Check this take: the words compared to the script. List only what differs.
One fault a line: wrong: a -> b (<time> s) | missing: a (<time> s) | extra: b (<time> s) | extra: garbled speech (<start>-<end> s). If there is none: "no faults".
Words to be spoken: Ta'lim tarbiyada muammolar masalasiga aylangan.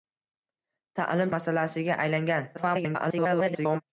missing: tarbiyada muammolar (1.3 s)
extra: garbled speech (2.5-3.8 s)